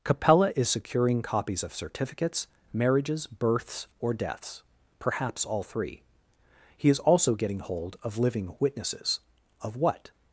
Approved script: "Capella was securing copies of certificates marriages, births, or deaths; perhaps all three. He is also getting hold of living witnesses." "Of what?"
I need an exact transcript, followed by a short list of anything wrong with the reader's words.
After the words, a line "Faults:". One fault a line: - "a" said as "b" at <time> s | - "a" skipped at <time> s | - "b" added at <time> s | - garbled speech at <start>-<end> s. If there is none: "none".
"Capella is securing copies of certificates marriages, births, or deaths; perhaps all three. He is also getting hold of living witnesses." "Of what?"
Faults:
- "was" said as "is" at 0.6 s